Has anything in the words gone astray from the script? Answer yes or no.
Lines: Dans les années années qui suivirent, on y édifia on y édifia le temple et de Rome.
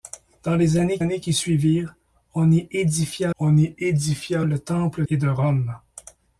no